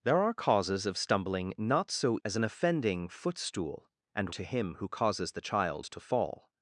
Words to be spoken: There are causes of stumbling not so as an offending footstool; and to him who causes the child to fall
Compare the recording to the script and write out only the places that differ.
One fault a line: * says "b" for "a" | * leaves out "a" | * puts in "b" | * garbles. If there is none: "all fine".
all fine